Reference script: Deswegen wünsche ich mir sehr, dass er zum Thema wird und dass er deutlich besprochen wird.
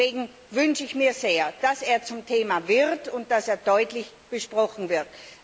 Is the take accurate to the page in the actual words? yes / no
yes